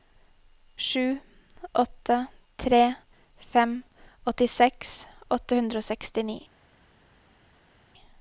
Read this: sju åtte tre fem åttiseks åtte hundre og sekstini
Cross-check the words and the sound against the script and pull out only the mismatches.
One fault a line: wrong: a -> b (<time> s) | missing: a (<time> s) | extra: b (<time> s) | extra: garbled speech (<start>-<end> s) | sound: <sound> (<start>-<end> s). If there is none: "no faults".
no faults